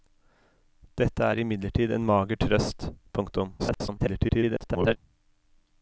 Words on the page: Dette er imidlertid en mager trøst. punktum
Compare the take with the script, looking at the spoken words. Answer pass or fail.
fail